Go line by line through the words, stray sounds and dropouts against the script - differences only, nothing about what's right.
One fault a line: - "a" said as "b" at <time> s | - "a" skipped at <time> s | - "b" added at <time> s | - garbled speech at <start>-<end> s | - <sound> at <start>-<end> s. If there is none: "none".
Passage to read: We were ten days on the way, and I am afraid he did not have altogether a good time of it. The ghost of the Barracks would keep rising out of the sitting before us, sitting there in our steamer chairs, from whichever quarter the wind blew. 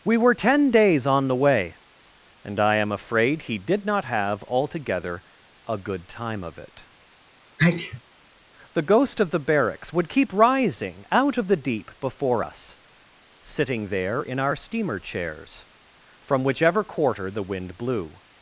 - sneeze at 7.6-8.0 s
- "sitting" said as "deep" at 11.6 s